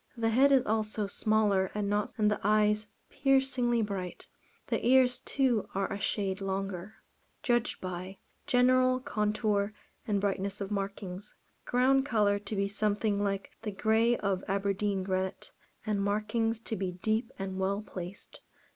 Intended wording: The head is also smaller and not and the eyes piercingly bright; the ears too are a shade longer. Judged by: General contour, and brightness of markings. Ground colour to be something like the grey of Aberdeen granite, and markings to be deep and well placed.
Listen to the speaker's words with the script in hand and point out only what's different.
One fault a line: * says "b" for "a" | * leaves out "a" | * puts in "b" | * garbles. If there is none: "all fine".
all fine